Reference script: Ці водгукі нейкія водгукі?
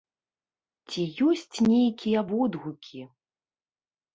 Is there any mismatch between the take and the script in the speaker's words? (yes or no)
yes